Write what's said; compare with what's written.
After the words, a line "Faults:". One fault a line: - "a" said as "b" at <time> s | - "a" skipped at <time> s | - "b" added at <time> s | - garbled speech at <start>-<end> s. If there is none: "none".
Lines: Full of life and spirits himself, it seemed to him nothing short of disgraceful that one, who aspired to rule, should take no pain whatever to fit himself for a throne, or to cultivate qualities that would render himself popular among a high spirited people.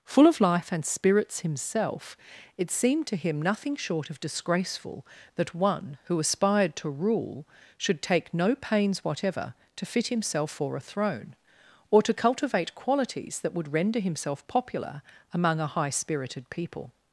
Full of life and spirits himself, it seemed to him nothing short of disgraceful that one, who aspired to rule, should take no pains whatever to fit himself for a throne, or to cultivate qualities that would render himself popular among a high spirited people.
Faults:
- "pain" said as "pains" at 8.6 s